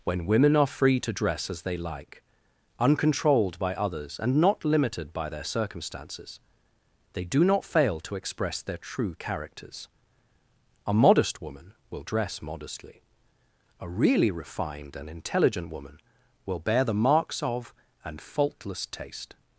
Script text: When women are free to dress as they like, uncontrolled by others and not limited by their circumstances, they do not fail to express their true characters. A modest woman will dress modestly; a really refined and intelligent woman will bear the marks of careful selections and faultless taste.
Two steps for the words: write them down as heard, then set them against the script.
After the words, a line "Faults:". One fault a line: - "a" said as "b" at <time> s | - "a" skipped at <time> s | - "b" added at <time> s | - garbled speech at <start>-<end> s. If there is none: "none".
When women are free to dress as they like, uncontrolled by others and not limited by their circumstances, they do not fail to express their true characters. A modest woman will dress modestly; a really refined and intelligent woman will bear the marks of and faultless taste.
Faults:
- "careful selections" skipped at 17.7 s